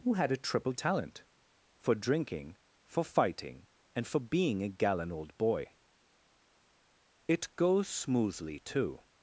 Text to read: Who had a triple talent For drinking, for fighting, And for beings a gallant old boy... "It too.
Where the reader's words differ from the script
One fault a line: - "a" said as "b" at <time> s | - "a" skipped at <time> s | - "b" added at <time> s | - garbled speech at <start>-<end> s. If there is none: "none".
- "beings" said as "being" at 4.2 s
- "goes smoothly" added at 7.5 s